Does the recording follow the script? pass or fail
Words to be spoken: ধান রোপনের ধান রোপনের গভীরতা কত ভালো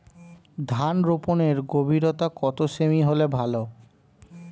fail